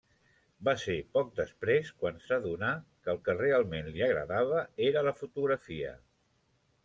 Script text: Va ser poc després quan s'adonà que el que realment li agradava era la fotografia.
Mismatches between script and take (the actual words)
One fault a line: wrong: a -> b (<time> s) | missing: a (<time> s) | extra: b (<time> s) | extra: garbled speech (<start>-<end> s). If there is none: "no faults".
no faults